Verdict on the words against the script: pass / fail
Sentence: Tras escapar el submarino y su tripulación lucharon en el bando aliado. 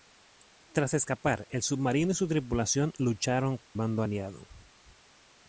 fail